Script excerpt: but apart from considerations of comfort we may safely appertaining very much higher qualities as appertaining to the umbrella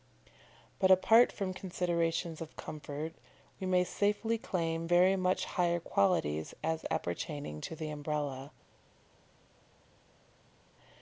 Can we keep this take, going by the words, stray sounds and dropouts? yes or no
no